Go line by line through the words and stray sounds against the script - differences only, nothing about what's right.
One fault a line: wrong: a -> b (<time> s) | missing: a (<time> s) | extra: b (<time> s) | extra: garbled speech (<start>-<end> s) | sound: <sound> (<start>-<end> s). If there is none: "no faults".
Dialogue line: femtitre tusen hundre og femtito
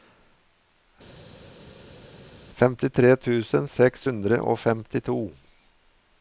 extra: seks (3.7 s)